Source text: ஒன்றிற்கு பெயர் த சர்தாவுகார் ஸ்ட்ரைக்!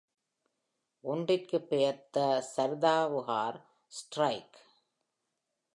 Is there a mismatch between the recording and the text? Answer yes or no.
no